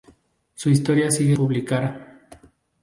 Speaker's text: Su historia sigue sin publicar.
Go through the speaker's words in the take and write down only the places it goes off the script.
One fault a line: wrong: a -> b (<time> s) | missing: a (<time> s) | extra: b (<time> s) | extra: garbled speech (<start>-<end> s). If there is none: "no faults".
missing: sin (1.4 s)